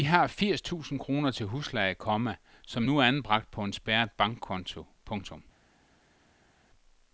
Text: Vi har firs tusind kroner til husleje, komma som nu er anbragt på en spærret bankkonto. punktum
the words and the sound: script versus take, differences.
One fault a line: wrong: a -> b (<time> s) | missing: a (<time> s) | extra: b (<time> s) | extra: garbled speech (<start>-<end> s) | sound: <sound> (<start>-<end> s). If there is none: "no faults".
no faults